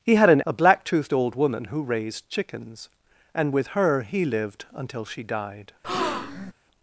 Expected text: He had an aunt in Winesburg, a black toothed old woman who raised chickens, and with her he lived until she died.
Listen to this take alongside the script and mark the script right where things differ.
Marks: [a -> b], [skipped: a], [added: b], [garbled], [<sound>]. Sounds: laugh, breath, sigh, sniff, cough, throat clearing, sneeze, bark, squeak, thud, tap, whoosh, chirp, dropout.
He had an [skipped: aunt in Winesburg,] a black toothed old woman who raised chickens, and with her he lived until she died. [breath]